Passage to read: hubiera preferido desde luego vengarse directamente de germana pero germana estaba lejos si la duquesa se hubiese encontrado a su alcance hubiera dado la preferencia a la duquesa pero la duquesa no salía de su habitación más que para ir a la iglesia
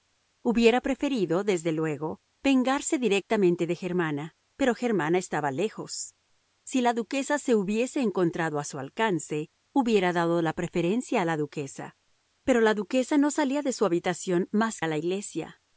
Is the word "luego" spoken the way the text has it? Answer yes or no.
yes